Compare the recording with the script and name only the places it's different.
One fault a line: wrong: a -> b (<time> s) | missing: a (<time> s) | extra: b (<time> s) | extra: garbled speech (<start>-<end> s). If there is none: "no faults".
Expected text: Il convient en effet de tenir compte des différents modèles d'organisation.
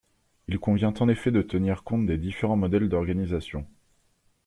no faults